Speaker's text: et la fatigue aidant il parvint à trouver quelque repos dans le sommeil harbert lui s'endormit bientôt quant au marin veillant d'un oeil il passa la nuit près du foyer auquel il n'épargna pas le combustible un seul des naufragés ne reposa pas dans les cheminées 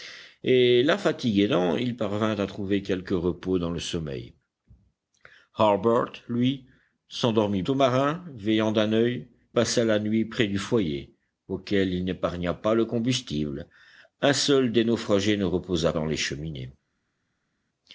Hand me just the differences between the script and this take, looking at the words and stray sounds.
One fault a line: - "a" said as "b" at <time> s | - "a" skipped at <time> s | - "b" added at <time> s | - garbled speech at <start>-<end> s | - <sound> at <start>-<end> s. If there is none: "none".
- "bientôt quant" skipped at 7.6 s
- "il" skipped at 9.3 s
- "pas" skipped at 15.9 s